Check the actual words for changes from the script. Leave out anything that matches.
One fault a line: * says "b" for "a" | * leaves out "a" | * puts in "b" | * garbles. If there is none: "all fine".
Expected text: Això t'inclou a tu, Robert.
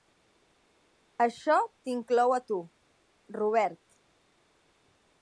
all fine